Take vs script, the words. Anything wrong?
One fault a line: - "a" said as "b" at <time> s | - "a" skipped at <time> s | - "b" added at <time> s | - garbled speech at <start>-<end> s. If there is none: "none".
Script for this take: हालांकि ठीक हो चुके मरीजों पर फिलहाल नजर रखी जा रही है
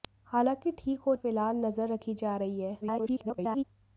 - "चुके मरीजों पर" skipped at 1.1 s
- garbled speech at 2.8-3.6 s